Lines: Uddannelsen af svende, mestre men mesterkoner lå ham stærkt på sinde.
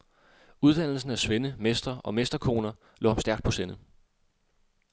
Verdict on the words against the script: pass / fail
fail